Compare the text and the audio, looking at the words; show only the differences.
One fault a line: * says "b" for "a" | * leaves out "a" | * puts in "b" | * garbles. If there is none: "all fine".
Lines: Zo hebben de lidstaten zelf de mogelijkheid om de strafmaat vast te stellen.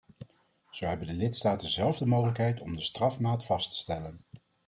all fine